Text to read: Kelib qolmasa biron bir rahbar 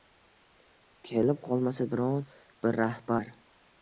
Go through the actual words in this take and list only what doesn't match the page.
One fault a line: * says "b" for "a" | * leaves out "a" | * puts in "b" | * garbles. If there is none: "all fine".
all fine